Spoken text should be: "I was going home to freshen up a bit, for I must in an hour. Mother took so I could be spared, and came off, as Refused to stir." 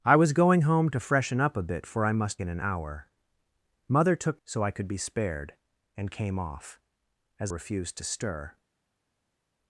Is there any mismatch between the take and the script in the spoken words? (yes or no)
no